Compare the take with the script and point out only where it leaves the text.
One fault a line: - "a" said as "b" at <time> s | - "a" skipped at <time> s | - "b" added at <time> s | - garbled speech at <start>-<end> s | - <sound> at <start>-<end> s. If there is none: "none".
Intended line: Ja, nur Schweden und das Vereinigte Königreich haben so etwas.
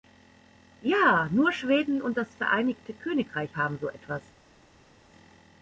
none